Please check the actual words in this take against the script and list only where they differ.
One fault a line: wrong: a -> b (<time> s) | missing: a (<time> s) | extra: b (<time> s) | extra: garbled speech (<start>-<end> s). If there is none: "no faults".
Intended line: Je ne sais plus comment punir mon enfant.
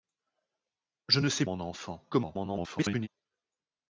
missing: plus comment punir (1.5 s)
extra: garbled speech (2.1-3.1 s)